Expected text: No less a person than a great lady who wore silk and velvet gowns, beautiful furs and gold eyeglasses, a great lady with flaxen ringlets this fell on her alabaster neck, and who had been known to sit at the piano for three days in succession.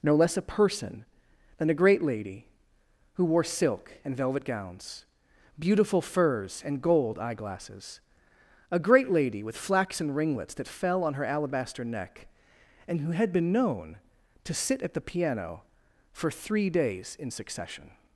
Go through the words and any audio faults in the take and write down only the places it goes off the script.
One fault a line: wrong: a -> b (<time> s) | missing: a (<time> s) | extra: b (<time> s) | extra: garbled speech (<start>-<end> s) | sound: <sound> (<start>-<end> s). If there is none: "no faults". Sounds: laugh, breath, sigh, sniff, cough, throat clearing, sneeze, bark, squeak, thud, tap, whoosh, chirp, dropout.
wrong: this -> that (10.6 s)